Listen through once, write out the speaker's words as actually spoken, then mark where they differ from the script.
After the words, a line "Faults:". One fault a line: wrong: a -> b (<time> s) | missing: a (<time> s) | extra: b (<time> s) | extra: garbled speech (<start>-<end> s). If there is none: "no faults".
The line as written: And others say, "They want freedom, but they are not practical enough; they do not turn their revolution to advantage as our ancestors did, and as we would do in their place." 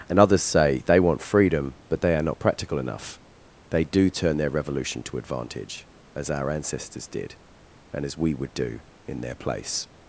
And others say, "They want freedom, but they are not practical enough; they do turn their revolution to advantage as our ancestors did, and as we would do in their place."
Faults:
missing: not (4.1 s)